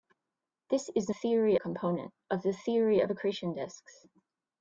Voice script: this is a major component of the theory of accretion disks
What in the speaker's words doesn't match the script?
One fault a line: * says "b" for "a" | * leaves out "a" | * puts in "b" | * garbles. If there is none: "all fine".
* says "theory" for "major"